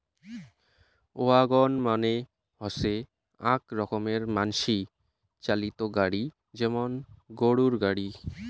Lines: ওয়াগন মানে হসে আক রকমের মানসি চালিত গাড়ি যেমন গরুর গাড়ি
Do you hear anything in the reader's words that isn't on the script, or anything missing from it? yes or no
no